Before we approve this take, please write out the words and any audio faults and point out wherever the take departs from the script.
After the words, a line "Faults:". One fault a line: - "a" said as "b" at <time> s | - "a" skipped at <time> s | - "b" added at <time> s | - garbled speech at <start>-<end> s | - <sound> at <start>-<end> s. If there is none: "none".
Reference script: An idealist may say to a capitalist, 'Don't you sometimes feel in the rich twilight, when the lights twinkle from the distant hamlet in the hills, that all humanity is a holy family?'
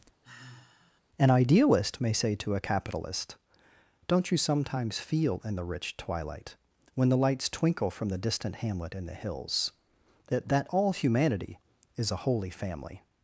An idealist may say to a capitalist, 'Don't you sometimes feel in the rich twilight, when the lights twinkle from the distant hamlet in the hills, that that all humanity is a holy family?'
Faults:
- sigh at 0.2-1.0 s
- "that" added at 10.5 s